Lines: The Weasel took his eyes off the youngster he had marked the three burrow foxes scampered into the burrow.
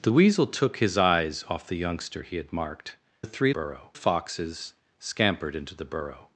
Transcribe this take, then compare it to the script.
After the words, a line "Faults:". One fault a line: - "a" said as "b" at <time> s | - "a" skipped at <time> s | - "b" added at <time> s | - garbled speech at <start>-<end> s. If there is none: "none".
The Weasel took his eyes off the youngster he had marked the three burrow foxes scampered into the burrow.
Faults:
none